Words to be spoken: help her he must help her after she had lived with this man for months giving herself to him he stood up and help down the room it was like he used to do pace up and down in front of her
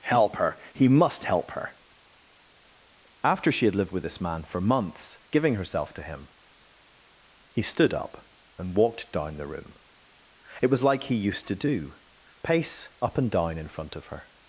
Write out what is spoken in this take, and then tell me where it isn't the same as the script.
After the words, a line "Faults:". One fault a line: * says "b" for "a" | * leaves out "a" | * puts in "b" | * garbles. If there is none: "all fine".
help her he must help her after she had lived with this man for months giving herself to him he stood up and walked down the room it was like he used to do pace up and down in front of her
Faults:
* says "walked" for "help"